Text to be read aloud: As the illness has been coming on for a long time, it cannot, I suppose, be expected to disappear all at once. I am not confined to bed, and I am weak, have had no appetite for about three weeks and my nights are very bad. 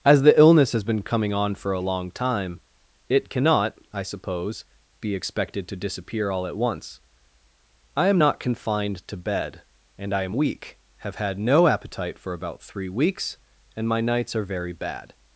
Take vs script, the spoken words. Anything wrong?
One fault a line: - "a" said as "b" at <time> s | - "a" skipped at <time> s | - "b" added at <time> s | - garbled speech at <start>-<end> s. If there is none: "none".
none